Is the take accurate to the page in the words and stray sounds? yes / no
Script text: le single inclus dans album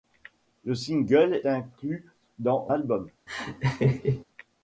no